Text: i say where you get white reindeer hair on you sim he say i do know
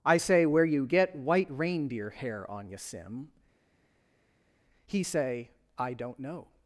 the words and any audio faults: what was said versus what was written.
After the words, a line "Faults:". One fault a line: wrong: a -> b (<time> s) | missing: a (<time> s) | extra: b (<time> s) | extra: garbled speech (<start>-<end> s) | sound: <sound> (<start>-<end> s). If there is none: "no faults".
i say where you get white reindeer hair on you sim he say i don't know
Faults:
wrong: do -> don't (5.9 s)